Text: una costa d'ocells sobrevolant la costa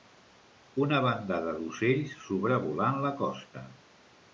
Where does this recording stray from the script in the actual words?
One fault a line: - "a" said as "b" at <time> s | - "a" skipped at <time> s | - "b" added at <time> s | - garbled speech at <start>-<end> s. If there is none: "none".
- "costa" said as "bandada" at 1.1 s